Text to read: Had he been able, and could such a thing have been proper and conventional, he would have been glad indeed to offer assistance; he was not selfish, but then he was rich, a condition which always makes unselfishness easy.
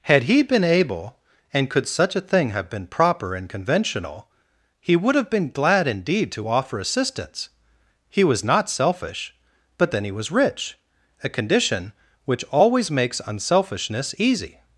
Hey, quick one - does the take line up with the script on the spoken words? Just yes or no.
yes